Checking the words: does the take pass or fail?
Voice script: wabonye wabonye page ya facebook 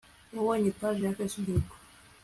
fail